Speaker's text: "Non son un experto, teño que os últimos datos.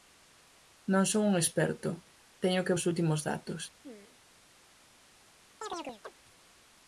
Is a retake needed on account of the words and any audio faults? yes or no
yes